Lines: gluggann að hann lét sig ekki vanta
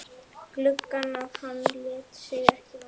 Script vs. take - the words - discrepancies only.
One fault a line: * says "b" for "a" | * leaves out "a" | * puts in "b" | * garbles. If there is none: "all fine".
all fine